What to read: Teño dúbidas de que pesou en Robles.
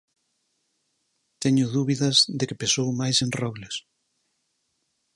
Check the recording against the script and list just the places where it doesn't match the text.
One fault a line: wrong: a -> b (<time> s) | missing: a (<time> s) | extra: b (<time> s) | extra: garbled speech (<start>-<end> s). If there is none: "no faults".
extra: máis (3.0 s)